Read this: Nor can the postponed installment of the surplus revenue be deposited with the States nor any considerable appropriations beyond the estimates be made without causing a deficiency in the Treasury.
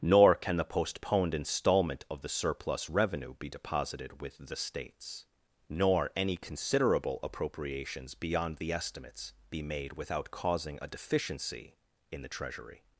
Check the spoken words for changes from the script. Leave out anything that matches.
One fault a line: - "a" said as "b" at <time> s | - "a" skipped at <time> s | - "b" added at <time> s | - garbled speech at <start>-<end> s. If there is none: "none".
none